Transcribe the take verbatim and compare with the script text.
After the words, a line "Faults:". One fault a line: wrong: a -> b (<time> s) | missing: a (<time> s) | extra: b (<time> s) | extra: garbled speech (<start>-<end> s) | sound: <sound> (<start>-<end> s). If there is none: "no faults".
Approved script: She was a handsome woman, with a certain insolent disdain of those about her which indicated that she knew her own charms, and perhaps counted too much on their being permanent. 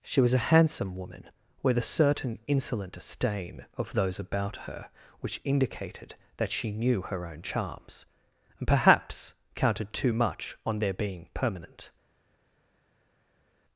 She was a handsome woman, with a certain insolent disdain of those about her which indicated that she knew her own charms, and perhaps counted too much on their being permanent.
Faults:
no faults